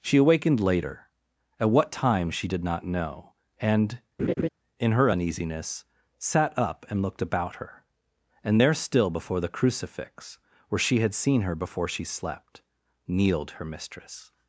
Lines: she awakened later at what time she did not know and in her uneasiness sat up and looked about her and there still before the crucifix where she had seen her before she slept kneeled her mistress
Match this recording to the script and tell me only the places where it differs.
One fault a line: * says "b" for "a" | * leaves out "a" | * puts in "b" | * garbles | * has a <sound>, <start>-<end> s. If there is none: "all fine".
* has a laugh, 4.2-4.5 s